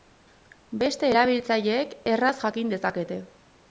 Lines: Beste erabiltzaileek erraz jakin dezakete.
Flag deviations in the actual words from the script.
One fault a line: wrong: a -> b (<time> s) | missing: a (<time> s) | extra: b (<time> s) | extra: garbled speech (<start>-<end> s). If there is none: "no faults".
no faults